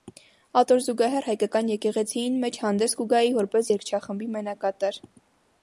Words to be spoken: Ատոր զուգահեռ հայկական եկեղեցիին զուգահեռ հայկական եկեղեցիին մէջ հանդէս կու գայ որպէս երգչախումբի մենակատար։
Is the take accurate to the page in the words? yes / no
no